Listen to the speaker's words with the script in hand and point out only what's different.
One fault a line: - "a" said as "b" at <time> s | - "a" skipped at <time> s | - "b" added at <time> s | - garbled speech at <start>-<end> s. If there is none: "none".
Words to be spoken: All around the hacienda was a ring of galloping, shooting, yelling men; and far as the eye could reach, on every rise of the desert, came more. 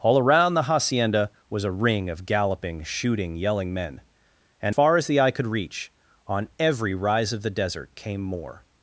none